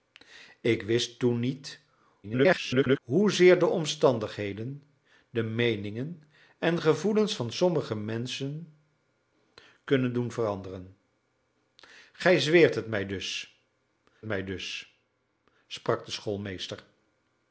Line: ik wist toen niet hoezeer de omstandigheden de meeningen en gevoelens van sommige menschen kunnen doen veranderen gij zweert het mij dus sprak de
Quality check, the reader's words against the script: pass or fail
fail